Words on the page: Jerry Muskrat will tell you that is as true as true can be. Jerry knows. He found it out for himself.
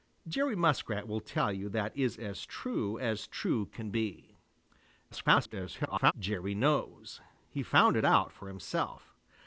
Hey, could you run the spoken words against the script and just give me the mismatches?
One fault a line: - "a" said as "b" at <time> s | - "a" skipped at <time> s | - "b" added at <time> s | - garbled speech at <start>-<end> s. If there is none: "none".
- garbled speech at 5.1-6.1 s